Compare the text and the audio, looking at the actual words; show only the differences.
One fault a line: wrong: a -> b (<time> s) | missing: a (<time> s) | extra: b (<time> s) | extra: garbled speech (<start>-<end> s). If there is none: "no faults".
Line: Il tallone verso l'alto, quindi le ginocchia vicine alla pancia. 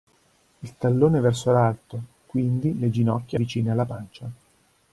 no faults